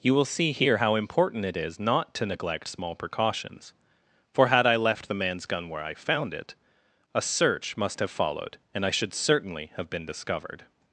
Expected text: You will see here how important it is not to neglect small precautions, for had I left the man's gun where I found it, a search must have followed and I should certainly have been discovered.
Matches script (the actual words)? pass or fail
pass